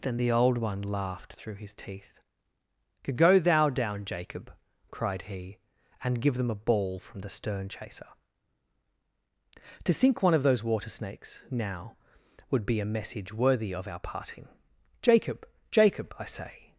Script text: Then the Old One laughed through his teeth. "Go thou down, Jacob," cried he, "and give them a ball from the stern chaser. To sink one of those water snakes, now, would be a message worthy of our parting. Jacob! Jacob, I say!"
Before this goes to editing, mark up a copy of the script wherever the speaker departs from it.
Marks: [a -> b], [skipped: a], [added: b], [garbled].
Then the Old One laughed through his teeth. "Go thou down, Jacob," cried he, "and give them a ball from the stern chaser. To sink one of those water snakes, now, would be a message worthy of our parting. Jacob! Jacob, I say!"